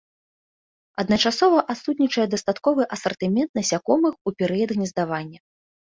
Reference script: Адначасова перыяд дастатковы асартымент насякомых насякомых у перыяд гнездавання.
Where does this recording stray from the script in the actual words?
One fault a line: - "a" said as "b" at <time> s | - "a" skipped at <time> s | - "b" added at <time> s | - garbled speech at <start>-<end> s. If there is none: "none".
- "перыяд" said as "адсутнічае" at 1.7 s
- "насякомых" skipped at 4.1 s